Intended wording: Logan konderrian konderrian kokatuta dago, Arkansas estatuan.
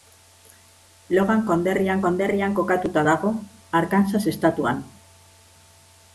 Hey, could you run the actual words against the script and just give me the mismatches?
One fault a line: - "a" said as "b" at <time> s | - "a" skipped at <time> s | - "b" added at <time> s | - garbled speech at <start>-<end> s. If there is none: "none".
none